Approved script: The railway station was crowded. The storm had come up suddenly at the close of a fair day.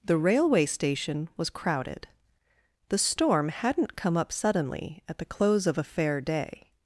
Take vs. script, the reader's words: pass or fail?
fail